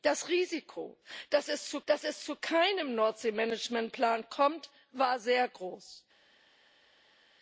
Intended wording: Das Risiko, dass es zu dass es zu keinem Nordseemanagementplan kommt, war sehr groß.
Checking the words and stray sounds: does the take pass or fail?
pass